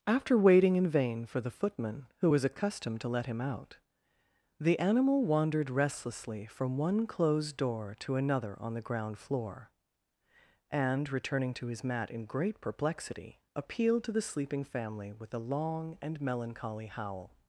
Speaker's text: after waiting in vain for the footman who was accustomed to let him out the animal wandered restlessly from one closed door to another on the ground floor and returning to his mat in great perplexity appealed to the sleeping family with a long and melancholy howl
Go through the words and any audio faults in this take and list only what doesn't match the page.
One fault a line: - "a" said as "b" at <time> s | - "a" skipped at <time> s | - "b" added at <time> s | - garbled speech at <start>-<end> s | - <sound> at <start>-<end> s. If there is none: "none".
none